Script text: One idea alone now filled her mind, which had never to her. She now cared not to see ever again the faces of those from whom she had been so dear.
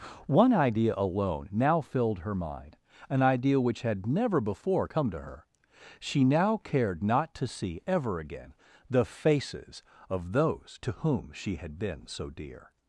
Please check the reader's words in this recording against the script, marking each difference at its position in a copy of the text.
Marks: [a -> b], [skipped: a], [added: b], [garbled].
One idea alone now filled her mind, [added: an idea] which had never [added: before come] to her. She now cared not to see ever again the faces of those [from -> to] whom she had been so dear.